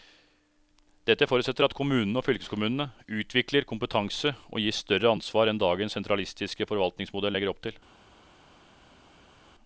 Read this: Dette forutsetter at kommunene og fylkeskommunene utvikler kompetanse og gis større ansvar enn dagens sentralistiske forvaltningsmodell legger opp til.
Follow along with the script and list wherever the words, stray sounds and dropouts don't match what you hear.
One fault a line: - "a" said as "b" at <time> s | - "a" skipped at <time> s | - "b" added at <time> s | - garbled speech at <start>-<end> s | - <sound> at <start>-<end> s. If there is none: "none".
none